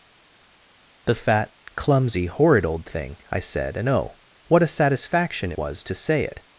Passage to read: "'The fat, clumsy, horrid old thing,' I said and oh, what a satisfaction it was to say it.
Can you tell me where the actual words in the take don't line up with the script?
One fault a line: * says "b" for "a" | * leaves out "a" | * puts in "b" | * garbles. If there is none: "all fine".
* leaves out "it"